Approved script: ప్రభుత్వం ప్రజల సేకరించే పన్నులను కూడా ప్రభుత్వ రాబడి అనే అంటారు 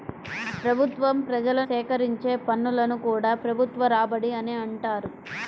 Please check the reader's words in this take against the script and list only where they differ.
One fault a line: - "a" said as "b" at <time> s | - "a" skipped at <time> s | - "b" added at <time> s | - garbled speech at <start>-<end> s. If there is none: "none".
none